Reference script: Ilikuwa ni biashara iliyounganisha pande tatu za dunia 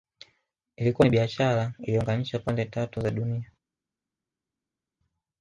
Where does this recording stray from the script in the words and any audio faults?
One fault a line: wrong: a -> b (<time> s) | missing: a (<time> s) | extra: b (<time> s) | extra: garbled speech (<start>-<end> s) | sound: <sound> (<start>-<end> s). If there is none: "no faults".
no faults